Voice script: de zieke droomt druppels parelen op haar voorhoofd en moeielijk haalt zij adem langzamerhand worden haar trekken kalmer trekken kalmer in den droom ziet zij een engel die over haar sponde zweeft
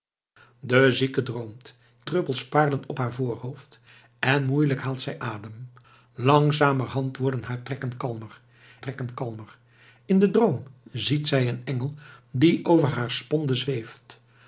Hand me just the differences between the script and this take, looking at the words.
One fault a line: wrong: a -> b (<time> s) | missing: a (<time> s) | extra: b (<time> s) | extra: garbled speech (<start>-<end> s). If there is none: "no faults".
no faults